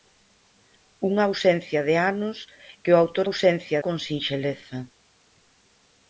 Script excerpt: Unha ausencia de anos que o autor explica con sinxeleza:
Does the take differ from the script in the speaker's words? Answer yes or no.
yes